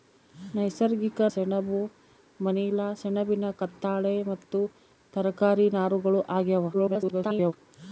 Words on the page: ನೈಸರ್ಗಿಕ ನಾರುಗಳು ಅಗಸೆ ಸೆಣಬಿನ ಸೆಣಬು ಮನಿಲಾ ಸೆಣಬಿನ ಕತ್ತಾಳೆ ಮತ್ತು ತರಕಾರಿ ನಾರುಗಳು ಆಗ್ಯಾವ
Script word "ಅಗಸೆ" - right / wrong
wrong